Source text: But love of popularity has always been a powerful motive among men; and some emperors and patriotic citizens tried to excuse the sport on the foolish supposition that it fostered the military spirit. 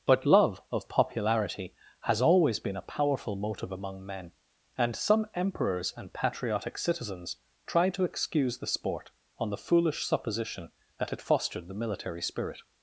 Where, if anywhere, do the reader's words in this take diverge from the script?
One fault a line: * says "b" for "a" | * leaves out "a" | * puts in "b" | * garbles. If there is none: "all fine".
all fine